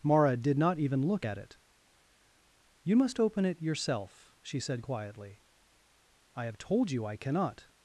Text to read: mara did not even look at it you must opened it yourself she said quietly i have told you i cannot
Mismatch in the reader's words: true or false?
true